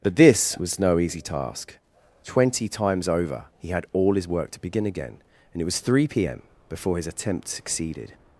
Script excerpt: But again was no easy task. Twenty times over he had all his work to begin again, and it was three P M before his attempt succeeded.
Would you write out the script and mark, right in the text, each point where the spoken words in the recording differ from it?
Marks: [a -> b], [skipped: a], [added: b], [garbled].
But [again -> this] was no easy task. Twenty times over he had all his work to begin again, and it was three P M before his attempt succeeded.